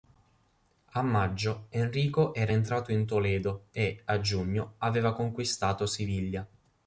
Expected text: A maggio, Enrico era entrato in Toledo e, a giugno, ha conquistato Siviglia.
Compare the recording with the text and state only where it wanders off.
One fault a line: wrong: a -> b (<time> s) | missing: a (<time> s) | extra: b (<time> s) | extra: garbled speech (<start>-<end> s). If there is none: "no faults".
wrong: ha -> aveva (4.8 s)